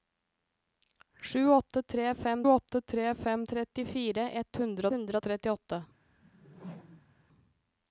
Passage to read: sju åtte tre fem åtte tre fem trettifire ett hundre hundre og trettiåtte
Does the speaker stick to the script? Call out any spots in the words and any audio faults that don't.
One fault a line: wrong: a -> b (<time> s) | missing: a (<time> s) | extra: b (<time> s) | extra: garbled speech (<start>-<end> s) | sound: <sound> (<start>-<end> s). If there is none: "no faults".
sound: whoosh (6.2-7.3 s)